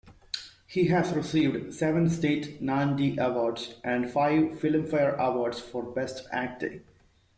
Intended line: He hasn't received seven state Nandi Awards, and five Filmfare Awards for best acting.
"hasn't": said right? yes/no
no